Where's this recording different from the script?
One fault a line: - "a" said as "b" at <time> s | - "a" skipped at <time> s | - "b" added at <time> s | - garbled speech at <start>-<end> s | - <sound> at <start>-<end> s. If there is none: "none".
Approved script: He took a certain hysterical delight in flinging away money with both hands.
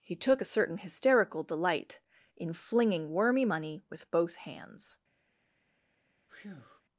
- "away" said as "wormy" at 3.1 s
- breath at 6.3-6.8 s